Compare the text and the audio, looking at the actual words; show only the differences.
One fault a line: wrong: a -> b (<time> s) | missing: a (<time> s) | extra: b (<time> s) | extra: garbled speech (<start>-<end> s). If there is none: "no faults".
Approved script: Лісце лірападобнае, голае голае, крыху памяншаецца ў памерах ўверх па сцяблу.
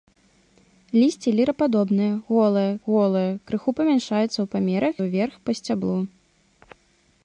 no faults